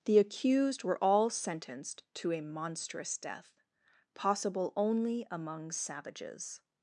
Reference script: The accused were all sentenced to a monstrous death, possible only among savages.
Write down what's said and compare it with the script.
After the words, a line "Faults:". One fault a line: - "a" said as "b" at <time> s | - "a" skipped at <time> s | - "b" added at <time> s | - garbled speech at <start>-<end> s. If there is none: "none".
The accused were all sentenced to a monstrous death, possible only among savages.
Faults:
none